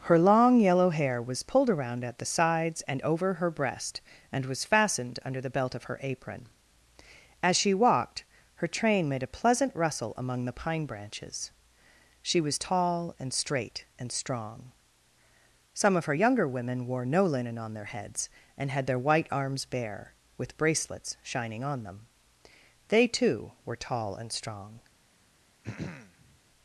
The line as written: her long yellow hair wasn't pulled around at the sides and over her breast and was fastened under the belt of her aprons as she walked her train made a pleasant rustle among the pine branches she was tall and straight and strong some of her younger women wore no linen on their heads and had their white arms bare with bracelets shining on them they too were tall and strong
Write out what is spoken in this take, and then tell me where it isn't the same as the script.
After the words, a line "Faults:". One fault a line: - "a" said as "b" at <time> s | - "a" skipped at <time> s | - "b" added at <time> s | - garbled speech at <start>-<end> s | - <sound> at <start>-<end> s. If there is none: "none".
her long yellow hair was pulled around at the sides and over her breast and was fastened under the belt of her apron as she walked her train made a pleasant rustle among the pine branches she was tall and straight and strong some of her younger women wore no linen on their heads and had their white arms bare with bracelets shining on them they too were tall and strong
Faults:
- "wasn't" said as "was" at 1.2 s
- "aprons" said as "apron" at 6.0 s
- throat clearing at 25.6-26.4 s